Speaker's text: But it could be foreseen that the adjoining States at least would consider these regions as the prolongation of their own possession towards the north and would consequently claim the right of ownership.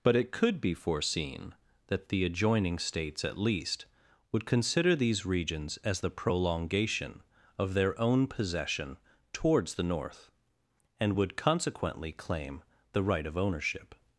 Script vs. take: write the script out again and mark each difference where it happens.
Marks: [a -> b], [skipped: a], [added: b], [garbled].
But it could be foreseen that the adjoining States at least would consider these regions as the prolongation of their own possession towards the north and would consequently claim the right of ownership.